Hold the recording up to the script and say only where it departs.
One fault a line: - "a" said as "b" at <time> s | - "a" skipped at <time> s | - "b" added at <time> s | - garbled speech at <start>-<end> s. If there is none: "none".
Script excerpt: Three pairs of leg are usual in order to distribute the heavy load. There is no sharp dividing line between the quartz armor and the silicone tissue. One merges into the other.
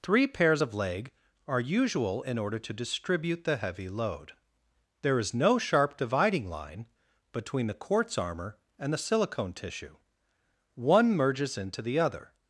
none